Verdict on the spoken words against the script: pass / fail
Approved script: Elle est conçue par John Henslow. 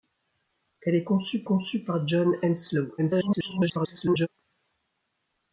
fail